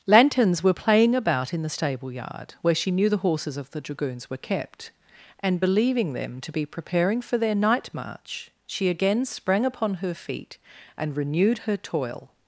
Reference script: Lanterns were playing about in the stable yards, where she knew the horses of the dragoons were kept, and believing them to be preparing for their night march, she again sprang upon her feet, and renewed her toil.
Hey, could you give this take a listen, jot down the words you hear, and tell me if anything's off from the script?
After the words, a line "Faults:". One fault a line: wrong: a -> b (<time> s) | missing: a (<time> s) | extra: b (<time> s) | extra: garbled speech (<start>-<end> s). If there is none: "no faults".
Lanterns were playing about in the stable yard, where she knew the horses of the dragoons were kept, and believing them to be preparing for their night march, she again sprang upon her feet, and renewed her toil.
Faults:
wrong: yards -> yard (2.1 s)